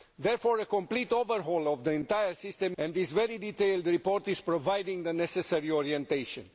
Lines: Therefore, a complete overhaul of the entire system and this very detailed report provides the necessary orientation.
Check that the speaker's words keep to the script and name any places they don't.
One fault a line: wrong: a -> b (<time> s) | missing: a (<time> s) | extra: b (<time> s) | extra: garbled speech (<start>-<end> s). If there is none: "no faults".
no faults